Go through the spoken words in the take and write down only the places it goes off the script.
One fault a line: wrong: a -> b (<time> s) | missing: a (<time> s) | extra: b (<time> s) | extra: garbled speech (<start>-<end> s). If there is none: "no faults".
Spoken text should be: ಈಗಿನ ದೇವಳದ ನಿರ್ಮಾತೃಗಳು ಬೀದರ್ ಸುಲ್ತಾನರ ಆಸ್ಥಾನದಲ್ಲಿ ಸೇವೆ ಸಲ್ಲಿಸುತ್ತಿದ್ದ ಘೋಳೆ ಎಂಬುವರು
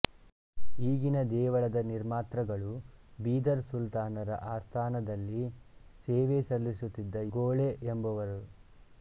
no faults